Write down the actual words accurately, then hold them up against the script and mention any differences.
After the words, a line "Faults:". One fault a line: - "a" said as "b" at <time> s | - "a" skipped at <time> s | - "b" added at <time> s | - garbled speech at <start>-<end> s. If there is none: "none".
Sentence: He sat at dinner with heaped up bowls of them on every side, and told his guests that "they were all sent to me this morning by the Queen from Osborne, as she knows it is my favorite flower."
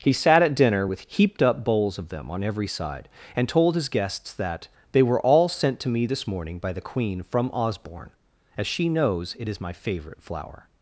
He sat at dinner with heaped up bowls of them on every side, and told his guests that "they were all sent to me this morning by the Queen from Osborne, as she knows it is my favorite flower."
Faults:
none